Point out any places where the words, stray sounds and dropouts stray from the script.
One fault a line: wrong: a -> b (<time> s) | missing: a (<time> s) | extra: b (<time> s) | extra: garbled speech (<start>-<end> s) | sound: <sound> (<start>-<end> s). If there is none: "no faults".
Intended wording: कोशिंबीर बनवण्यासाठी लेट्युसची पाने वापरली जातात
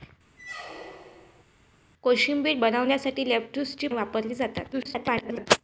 sound: squeak (0.4-1.4 s)
missing: पाने (3.9 s)
extra: garbled speech (4.7-5.5 s)